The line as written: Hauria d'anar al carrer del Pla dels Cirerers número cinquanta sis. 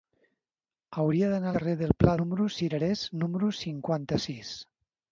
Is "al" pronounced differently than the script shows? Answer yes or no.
yes